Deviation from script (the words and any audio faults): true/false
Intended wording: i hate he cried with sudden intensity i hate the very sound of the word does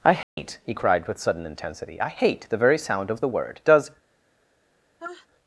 true